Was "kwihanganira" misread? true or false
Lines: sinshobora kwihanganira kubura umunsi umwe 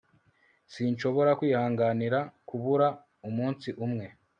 false